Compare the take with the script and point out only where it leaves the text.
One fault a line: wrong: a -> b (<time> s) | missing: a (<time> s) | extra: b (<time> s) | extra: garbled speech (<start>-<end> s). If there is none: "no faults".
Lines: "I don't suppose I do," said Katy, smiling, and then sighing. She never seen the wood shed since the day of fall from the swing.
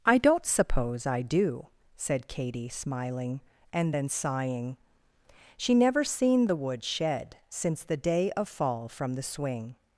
no faults